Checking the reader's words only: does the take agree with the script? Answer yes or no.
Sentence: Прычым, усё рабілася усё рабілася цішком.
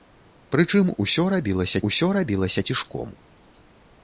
yes